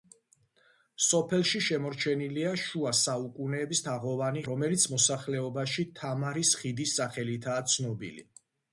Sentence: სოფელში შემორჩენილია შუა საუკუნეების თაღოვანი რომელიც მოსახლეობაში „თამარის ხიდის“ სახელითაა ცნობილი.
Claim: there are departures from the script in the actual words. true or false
false